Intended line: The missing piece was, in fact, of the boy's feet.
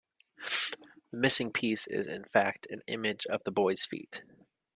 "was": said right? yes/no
no